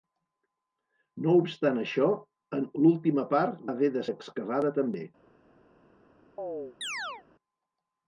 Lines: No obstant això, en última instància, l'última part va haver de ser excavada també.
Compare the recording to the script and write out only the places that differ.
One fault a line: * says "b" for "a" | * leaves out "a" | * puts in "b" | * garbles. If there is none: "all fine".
* leaves out "última instància"
* leaves out "va"
* leaves out "ser"